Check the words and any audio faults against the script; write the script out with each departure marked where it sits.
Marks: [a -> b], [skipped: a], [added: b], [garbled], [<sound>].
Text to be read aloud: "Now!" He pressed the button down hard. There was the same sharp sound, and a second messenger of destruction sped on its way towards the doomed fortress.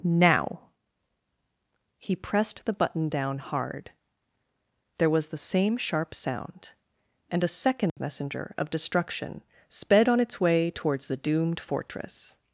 "Now!" He pressed the button down hard. There was the same sharp sound, and a second [dropout] messenger of destruction sped on its way towards the doomed fortress.